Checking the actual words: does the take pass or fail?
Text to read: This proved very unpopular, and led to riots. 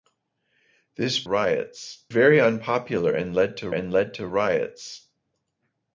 fail